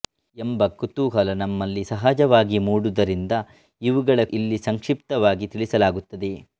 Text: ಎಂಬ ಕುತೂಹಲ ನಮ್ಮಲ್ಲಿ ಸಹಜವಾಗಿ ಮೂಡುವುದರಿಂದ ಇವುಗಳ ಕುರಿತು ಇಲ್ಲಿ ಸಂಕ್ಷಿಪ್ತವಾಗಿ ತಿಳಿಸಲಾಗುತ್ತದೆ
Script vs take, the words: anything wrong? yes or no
yes